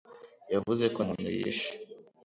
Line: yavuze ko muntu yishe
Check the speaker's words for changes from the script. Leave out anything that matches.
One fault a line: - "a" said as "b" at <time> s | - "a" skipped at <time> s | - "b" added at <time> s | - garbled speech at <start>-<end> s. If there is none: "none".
none